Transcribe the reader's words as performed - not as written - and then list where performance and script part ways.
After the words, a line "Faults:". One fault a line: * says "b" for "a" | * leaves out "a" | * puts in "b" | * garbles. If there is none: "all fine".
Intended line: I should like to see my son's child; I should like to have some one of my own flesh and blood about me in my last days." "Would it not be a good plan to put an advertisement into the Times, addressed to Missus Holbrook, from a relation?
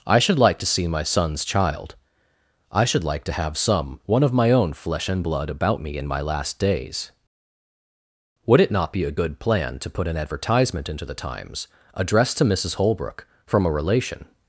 I should like to see my son's child; I should like to have some one of my own flesh and blood about me in my last days." "Would it not be a good plan to put an advertisement into the Times, addressed to Missus Holbrook, from a relation?
Faults:
all fine